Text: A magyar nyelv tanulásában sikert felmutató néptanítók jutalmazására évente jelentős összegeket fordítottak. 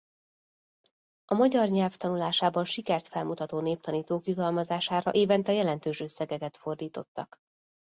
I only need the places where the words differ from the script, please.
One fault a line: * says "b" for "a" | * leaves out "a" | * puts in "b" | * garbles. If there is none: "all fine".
all fine